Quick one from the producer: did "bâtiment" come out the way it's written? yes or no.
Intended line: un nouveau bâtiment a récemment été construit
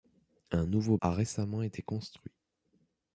no